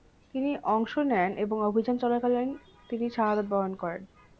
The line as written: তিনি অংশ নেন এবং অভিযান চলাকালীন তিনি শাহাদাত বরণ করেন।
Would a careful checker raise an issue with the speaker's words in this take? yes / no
no